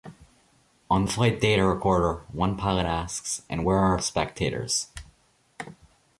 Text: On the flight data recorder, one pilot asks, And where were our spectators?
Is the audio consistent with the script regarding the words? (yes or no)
no